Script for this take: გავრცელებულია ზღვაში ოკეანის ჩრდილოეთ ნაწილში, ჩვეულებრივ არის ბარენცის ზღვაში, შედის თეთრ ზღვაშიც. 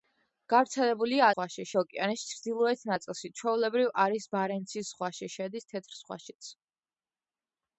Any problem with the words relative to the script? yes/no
no